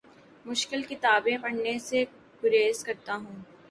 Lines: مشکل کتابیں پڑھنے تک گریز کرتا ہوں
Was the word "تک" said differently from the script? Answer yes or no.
yes